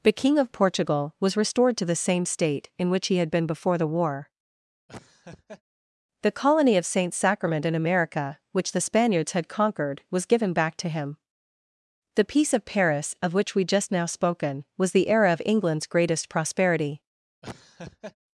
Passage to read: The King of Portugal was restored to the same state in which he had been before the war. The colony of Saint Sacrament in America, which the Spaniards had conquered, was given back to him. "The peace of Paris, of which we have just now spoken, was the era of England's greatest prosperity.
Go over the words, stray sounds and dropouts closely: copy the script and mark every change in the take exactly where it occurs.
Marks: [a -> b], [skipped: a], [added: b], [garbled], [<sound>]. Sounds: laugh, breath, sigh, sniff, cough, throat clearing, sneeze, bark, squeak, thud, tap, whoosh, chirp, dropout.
The King of Portugal was restored to the same state in which he had been before the war. [laugh] The colony of Saint Sacrament in America, which the Spaniards had conquered, was given back to him. "The peace of Paris, of which we [skipped: have] just now spoken, was the era of England's greatest prosperity. [laugh]